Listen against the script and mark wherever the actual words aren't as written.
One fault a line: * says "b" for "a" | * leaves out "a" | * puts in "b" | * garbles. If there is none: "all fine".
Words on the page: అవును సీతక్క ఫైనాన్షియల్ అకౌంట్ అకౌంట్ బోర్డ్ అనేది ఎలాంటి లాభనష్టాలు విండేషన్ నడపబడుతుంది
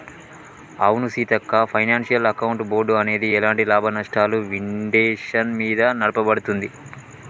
* leaves out "అకౌంట్"
* puts in "మీద"